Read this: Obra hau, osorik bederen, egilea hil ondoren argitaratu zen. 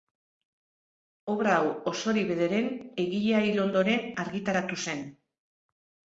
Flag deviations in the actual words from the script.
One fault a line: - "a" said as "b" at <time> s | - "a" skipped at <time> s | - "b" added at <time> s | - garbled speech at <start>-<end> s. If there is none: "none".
none